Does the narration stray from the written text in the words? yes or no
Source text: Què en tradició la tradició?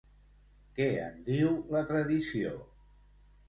yes